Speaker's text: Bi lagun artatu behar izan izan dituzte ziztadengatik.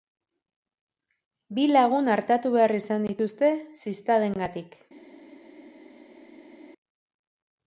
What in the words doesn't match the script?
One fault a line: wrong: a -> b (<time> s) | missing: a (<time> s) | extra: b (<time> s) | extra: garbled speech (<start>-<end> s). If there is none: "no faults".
missing: izan (3.1 s)